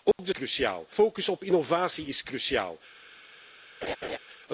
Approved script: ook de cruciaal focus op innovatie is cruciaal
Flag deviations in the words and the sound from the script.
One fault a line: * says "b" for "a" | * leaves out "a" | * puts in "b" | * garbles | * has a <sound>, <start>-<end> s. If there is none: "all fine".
* has a dropout, 0.1-0.2 s
* has a laugh, 3.8-4.2 s